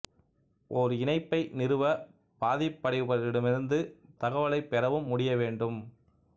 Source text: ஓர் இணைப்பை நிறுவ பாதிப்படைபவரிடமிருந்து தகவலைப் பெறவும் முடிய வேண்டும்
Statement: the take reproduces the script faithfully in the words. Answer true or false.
true